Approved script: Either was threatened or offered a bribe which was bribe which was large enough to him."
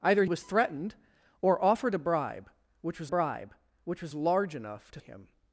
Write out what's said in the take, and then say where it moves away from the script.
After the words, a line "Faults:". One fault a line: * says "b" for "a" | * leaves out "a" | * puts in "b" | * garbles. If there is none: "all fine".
Either was threatened or offered a bribe which was bribe which was large enough to him."
Faults:
all fine